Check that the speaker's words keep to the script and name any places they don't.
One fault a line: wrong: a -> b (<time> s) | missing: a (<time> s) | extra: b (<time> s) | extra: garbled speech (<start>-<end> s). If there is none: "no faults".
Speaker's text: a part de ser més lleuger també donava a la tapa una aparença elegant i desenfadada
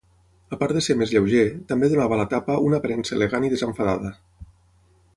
no faults